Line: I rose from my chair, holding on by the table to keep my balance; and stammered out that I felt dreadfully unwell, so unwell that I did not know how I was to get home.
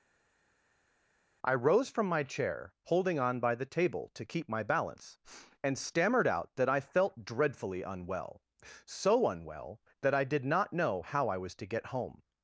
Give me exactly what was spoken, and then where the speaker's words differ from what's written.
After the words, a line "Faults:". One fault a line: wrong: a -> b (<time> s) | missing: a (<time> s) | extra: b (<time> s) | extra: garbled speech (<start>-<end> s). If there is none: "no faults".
I rose from my chair, holding on by the table to keep my balance; and stammered out that I felt dreadfully unwell, so unwell that I did not know how I was to get home.
Faults:
no faults